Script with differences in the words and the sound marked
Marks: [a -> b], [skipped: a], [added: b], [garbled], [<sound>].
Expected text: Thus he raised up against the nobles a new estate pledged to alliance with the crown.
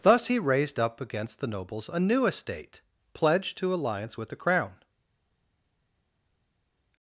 Thus he raised up against the nobles a new estate pledged to alliance with the crown.